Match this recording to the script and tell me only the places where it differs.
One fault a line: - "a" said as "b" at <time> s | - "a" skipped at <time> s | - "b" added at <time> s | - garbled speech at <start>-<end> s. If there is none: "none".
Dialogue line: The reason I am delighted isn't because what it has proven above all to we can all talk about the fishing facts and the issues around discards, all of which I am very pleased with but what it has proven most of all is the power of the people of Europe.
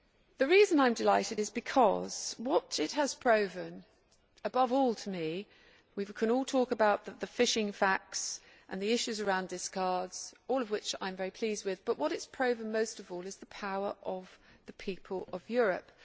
- "isn't" said as "is" at 1.4 s
- "me" added at 5.1 s